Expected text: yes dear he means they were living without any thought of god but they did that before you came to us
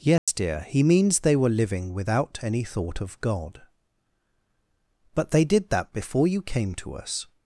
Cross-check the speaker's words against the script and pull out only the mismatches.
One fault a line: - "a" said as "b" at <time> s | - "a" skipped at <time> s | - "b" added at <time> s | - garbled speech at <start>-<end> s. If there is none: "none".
none